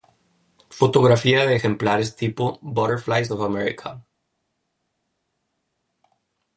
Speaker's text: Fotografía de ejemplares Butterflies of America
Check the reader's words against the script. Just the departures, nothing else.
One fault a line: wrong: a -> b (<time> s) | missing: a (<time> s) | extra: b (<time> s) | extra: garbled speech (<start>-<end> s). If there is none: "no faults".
extra: tipo (2.1 s)